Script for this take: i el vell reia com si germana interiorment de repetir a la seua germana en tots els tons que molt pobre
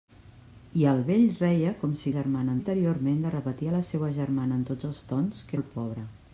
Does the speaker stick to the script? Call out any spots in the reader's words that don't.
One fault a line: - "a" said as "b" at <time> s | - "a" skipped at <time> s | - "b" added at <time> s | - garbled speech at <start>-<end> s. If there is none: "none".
none